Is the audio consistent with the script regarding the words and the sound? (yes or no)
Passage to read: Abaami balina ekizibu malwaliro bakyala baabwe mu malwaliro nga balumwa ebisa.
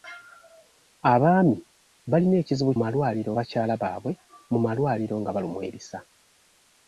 yes